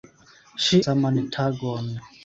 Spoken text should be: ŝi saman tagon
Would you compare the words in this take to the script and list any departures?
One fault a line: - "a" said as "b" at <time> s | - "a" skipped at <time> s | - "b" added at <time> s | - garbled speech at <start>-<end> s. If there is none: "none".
none